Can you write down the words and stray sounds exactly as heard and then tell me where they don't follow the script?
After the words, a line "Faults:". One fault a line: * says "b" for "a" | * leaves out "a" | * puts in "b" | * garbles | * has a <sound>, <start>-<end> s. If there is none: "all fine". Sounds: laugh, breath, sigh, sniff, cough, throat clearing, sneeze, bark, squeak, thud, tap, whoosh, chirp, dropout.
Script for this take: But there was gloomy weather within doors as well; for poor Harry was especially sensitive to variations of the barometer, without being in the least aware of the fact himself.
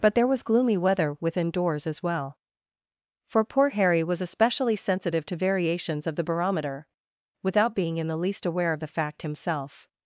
But there was gloomy weather within doors as well; for poor Harry was especially sensitive to variations of the barometer, without being in the least aware of the fact himself.
Faults:
all fine